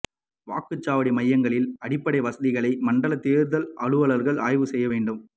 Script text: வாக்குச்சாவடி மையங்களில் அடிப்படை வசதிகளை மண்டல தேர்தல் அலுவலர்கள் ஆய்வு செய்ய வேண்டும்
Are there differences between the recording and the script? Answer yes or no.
no